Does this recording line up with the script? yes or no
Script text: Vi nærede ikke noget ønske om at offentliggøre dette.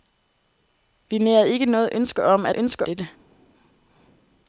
no